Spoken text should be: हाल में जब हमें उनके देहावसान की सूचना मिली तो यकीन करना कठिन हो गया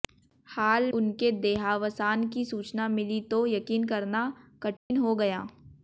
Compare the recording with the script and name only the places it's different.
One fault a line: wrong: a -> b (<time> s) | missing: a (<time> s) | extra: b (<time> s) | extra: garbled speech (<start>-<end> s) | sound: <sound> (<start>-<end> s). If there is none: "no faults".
missing: में जब हमें (0.9 s)
sound: dropout (4.8-4.9 s)